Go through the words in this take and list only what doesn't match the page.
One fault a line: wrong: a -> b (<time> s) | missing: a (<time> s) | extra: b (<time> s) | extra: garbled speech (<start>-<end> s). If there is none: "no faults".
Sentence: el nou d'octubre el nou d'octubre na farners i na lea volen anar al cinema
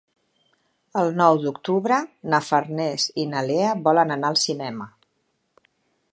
missing: el nou d'octubre (2.0 s)